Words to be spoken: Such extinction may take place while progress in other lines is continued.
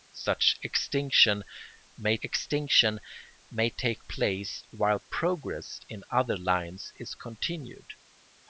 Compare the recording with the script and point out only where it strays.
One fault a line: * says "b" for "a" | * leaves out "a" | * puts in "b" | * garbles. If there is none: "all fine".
* puts in "extinction may"